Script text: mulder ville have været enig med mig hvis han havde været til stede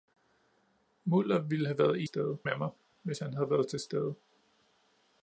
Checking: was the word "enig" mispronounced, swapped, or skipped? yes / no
yes